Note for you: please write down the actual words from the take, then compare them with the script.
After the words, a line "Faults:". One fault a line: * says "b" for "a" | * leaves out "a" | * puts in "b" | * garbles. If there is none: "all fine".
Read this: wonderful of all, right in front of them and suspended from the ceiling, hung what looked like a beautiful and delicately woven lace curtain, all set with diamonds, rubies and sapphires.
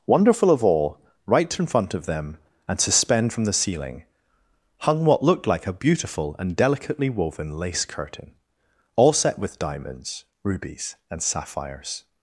wonderful of all, right in front of them and suspend from the ceiling, hung what looked like a beautiful and delicately woven lace curtain, all set with diamonds, rubies and sapphires.
Faults:
* says "suspend" for "suspended"